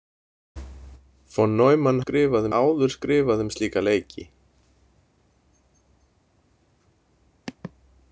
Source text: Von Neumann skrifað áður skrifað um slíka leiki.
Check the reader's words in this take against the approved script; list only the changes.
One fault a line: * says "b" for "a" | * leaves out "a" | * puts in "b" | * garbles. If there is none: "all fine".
all fine